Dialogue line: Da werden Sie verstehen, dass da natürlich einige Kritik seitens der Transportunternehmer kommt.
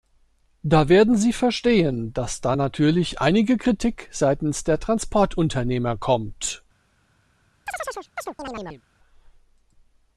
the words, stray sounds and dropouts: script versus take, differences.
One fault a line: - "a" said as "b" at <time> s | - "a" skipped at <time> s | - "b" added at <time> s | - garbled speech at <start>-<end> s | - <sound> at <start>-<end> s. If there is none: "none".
- chirp at 7.7-8.8 s